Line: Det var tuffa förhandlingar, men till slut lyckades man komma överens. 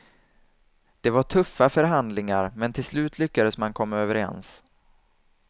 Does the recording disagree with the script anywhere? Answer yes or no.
no